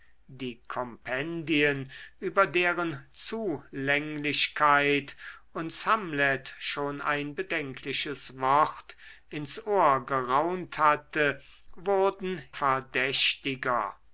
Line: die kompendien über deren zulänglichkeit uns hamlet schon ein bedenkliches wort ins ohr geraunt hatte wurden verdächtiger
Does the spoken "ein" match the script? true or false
true